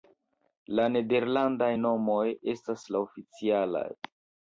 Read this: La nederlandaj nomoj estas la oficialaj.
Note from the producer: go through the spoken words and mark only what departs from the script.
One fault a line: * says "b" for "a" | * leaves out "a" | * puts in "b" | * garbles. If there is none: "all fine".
all fine